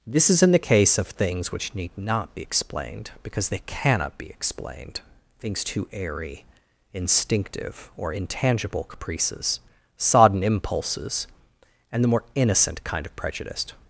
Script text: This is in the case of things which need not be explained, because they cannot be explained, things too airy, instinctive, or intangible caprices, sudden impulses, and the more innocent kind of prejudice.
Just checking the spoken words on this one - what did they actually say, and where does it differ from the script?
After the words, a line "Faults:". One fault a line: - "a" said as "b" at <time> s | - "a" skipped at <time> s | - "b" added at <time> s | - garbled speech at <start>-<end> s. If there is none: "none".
This is in the case of things which need not be explained, because they cannot be explained, things too airy, instinctive, or intangible caprices, sodden impulses, and the more innocent kind of prejudice.
Faults:
- "sudden" said as "sodden" at 10.0 s